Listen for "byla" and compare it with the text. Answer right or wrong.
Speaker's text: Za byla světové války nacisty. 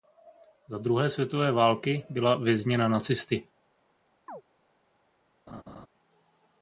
wrong